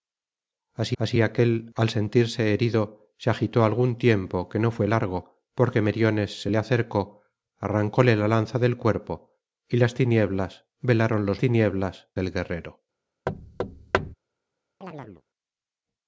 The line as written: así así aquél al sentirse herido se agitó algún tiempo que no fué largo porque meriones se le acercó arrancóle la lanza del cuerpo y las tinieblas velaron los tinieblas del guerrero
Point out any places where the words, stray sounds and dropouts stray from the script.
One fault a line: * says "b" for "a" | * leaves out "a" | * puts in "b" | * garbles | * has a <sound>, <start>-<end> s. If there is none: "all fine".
* has a thud, 13.3-14.1 s
* has a chirp, 14.8-15.2 s